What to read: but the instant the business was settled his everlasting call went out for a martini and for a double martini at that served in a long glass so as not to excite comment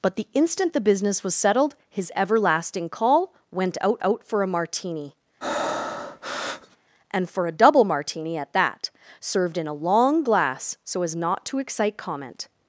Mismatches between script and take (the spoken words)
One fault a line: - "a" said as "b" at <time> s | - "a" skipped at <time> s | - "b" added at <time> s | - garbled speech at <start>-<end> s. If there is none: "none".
- "out" added at 4.0 s